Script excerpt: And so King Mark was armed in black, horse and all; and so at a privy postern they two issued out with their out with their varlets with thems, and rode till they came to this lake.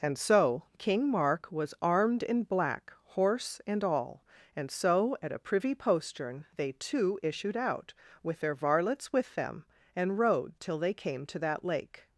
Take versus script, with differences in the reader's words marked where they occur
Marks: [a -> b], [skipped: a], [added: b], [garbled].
And so King Mark was armed in black, horse and all; and so at a privy postern they two issued out with their [skipped: out with their] varlets with [thems, -> them] and rode till they came to [this -> that] lake.